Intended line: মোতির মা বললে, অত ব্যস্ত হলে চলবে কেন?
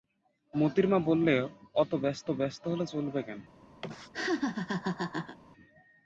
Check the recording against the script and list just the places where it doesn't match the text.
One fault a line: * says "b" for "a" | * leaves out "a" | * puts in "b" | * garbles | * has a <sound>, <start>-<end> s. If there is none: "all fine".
* puts in "ব্যস্ত"
* has a laugh, 3.8-5.4 s